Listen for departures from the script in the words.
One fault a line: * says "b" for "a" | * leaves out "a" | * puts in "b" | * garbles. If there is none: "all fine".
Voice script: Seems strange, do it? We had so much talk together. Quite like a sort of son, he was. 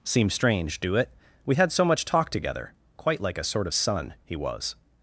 all fine